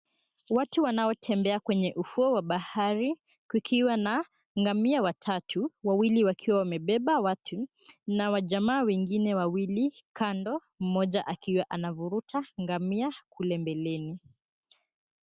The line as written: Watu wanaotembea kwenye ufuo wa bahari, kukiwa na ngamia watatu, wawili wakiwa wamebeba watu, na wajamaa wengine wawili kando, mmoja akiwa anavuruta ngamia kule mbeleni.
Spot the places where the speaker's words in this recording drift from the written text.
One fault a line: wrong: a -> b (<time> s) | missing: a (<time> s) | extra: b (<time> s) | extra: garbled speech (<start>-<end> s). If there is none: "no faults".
no faults